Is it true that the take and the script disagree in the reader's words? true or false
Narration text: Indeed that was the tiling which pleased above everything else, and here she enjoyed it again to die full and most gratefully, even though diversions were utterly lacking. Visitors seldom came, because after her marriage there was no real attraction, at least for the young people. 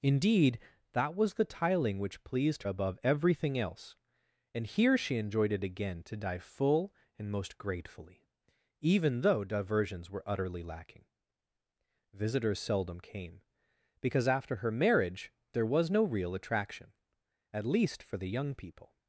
false